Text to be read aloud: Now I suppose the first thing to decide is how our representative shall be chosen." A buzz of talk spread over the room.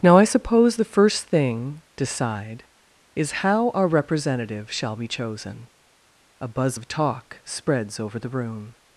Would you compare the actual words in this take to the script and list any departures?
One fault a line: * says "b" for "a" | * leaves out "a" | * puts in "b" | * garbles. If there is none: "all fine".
* leaves out "to"
* says "spreads" for "spread"